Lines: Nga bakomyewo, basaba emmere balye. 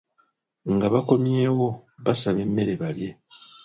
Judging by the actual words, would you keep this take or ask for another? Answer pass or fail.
pass